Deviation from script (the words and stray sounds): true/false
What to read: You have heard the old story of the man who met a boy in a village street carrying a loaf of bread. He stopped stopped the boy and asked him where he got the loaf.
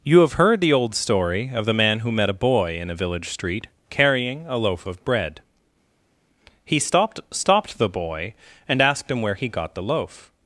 false